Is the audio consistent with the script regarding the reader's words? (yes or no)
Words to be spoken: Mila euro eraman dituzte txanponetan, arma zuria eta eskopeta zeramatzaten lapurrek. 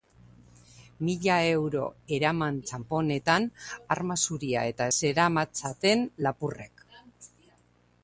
no